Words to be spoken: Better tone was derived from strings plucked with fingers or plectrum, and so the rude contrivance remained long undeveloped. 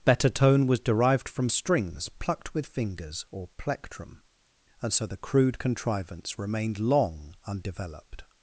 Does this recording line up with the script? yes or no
no